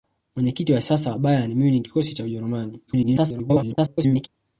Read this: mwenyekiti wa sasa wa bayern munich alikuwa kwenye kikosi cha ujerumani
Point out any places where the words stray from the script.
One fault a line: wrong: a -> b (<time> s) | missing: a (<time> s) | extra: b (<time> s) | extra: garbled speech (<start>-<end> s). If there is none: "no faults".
missing: alikuwa kwenye (1.9 s)
extra: garbled speech (2.9-4.3 s)